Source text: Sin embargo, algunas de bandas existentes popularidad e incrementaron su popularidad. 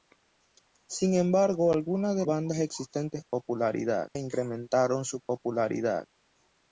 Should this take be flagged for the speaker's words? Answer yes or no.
no